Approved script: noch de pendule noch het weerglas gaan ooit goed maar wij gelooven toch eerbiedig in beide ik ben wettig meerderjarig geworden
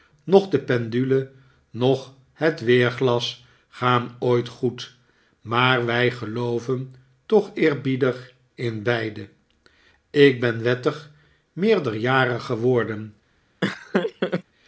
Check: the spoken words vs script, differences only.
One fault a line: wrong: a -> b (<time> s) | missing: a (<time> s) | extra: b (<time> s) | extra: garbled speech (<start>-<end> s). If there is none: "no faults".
no faults